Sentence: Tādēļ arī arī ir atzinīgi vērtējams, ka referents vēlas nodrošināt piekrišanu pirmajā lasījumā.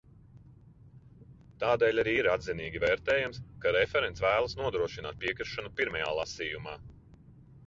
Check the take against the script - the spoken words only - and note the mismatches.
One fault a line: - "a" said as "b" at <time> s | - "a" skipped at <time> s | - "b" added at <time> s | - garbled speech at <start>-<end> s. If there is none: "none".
- "arī" skipped at 2.1 s